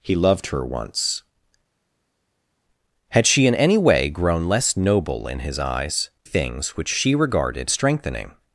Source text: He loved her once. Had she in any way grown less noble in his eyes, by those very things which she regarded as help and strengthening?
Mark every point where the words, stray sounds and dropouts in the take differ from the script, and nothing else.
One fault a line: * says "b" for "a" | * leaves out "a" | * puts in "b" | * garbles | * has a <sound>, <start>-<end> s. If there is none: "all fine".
* leaves out "by those very"
* leaves out "as help and"